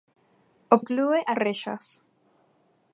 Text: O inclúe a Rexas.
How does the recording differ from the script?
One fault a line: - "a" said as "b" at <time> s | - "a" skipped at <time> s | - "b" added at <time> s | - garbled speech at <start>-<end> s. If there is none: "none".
none